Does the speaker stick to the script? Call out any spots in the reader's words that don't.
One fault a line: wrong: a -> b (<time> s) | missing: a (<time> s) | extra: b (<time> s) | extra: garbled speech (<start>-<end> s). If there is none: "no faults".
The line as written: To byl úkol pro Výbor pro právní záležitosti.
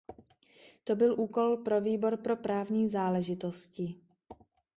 no faults